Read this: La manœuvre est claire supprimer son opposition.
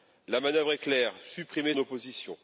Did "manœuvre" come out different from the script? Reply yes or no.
no